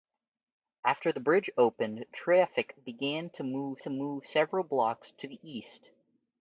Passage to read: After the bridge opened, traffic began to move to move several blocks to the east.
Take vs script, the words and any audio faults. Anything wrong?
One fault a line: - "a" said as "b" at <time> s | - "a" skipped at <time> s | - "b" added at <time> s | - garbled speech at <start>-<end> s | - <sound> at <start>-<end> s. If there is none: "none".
none